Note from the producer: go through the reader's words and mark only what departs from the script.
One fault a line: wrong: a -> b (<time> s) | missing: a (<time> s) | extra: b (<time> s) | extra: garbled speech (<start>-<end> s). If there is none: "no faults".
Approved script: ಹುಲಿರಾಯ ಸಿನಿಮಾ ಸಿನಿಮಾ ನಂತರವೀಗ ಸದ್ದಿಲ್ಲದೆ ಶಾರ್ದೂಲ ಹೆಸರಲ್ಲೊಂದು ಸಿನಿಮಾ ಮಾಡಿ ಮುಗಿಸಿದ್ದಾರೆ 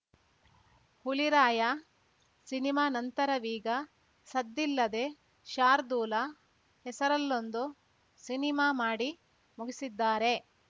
missing: ಸಿನಿಮಾ (2.9 s)